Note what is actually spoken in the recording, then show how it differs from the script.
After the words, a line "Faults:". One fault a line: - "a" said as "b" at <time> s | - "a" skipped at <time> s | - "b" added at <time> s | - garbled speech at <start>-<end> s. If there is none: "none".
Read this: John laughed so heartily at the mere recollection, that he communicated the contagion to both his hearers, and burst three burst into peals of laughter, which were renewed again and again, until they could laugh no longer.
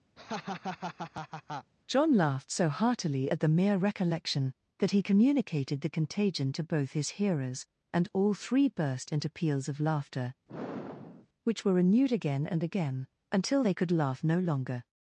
John laughed so heartily at the mere recollection, that he communicated the contagion to both his hearers, and all three burst into peals of laughter, which were renewed again and again, until they could laugh no longer.
Faults:
- "burst" said as "all" at 8.1 s